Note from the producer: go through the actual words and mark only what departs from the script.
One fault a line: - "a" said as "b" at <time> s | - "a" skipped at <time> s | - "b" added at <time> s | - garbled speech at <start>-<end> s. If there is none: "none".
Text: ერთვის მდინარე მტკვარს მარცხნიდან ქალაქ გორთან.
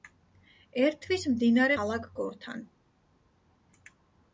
- "მტკვარს მარცხნიდან" skipped at 1.8 s